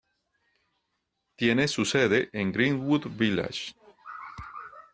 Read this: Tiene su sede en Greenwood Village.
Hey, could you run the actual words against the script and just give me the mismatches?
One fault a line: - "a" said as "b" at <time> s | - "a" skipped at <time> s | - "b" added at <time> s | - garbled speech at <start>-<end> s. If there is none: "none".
none